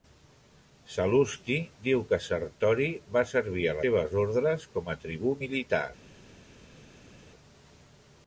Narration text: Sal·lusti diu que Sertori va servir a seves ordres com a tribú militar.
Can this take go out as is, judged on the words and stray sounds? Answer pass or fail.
pass